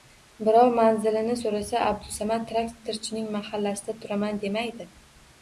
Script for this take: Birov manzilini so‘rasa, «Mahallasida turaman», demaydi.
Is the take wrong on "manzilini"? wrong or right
right